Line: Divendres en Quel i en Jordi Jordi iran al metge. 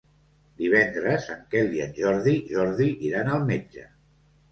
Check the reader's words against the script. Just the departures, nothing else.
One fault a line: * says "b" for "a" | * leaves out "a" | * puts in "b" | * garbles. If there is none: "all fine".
all fine